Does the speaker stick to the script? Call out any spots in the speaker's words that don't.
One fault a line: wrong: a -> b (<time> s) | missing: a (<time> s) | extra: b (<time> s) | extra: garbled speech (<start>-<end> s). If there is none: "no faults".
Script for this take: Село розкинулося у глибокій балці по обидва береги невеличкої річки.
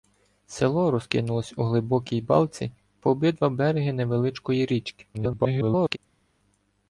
extra: garbled speech (5.1-6.0 s)